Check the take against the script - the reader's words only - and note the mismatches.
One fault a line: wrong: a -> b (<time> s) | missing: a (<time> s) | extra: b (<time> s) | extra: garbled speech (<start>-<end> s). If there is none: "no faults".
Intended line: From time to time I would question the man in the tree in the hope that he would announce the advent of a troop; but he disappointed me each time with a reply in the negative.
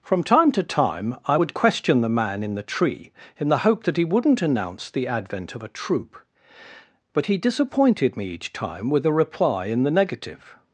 wrong: would -> wouldn't (4.0 s)